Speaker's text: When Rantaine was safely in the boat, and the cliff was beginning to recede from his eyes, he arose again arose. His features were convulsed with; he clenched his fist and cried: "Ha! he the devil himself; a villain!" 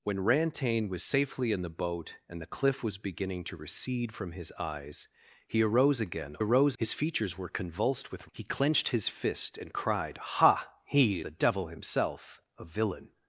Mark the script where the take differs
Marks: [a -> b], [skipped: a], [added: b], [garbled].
When Rantaine was safely in the boat, and the cliff was beginning to recede from his eyes, he arose again arose. His features were convulsed with; he clenched his fist and cried: "Ha! he the devil himself; a villain!"